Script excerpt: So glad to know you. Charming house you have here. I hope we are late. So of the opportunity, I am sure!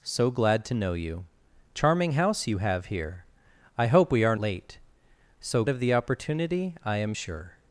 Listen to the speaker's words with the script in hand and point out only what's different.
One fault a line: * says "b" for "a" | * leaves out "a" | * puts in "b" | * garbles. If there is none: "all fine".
all fine